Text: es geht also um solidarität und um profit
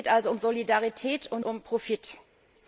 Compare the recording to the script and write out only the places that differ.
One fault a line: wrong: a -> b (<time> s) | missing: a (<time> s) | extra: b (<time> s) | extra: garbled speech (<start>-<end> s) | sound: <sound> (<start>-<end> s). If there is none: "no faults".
no faults